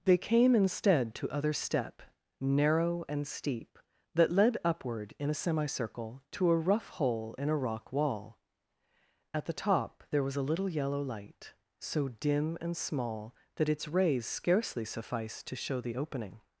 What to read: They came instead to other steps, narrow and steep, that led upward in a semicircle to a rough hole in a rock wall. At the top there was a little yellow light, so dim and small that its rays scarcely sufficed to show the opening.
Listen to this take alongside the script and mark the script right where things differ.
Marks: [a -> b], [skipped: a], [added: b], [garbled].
They came instead to other [steps, -> step] narrow and steep, that led upward in a semicircle to a rough hole in a rock wall. At the top there was a little yellow light, so dim and small that its rays scarcely sufficed to show the opening.